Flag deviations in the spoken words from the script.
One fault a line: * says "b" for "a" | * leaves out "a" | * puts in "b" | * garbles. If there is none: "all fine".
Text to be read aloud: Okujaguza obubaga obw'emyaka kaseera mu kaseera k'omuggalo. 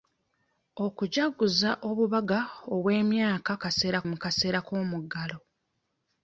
all fine